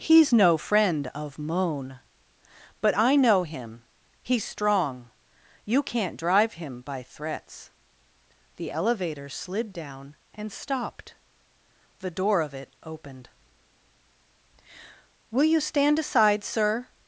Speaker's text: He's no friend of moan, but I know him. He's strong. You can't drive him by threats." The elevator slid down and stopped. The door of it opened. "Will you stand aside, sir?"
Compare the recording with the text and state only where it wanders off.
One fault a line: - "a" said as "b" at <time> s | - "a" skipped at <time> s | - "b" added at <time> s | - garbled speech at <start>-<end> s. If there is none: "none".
none